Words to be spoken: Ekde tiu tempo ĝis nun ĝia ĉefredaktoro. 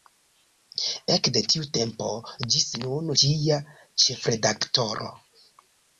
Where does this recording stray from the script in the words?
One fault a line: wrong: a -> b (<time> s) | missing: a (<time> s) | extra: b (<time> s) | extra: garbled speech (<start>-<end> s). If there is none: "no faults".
no faults